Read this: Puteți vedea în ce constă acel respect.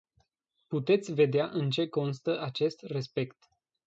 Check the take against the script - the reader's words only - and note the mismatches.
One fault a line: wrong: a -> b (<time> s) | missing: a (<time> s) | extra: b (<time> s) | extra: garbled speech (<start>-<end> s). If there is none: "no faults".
wrong: acel -> acest (2.4 s)